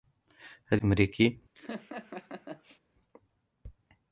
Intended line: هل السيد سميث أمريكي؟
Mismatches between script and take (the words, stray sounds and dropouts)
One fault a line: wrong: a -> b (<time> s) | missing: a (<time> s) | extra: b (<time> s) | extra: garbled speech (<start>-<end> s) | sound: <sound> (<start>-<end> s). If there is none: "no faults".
missing: السيد سميث (0.8 s)
sound: laugh (1.6-2.8 s)